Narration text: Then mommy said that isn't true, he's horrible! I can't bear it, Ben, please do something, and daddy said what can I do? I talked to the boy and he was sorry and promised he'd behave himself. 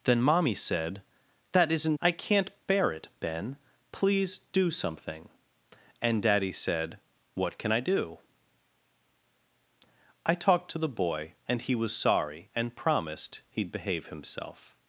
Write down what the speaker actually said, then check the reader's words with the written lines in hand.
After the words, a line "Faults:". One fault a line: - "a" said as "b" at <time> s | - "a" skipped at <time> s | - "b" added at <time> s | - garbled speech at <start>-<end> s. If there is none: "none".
Then mommy said that isn't! I can't bear it, Ben, please do something, and daddy said what can I do? I talked to the boy and he was sorry and promised he'd behave himself.
Faults:
- "true he's horrible" skipped at 2.0 s